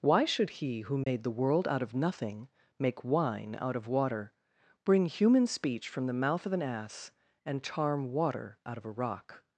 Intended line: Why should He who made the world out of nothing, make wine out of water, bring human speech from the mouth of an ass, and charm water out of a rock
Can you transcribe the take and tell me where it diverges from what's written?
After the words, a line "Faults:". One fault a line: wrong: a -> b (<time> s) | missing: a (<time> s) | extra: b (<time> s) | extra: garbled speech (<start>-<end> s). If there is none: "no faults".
Why should He who made the world out of nothing, make wine out of water, bring human speech from the mouth of an ass, and charm water out of a rock
Faults:
no faults